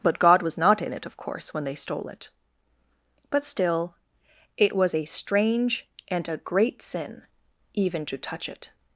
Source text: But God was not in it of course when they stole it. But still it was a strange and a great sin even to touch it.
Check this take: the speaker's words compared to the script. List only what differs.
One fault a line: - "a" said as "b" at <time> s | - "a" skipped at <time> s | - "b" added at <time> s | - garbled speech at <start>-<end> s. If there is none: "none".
none